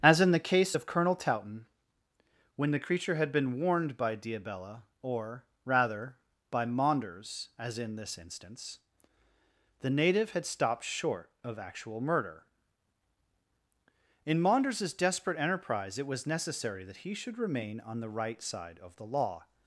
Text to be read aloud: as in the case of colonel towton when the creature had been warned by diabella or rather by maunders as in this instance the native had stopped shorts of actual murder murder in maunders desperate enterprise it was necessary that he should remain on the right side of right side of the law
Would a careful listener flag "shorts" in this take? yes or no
yes